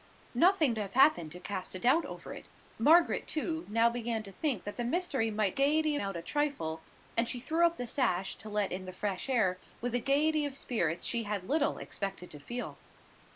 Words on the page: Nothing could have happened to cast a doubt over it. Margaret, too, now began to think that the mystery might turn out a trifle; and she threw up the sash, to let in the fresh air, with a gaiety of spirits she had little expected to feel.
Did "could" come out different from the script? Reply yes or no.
yes